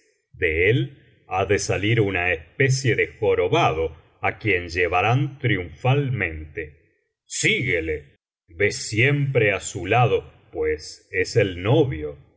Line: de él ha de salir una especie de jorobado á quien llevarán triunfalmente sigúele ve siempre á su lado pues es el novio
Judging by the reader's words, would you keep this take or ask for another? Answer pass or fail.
pass